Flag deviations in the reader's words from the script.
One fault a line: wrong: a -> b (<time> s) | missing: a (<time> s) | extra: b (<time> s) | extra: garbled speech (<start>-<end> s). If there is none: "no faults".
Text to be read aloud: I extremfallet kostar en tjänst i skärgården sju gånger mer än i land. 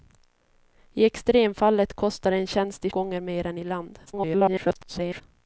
missing: skärgården sju (2.9 s)
extra: garbled speech (4.1-5.2 s)